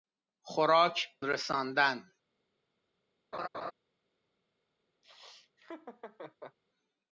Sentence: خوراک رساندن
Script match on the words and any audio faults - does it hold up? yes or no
no